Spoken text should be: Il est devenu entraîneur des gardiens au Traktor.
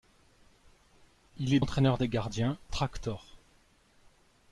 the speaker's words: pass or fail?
fail